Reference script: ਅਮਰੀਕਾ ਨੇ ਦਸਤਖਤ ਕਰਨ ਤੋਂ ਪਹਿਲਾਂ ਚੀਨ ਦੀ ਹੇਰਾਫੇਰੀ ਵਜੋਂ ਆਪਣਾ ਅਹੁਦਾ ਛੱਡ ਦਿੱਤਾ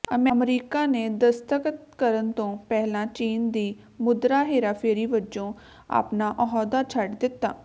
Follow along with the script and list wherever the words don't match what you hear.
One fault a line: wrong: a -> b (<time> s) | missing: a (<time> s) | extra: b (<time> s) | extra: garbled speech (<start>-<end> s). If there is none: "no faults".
extra: ਮੁਦਰਾ (4.0 s)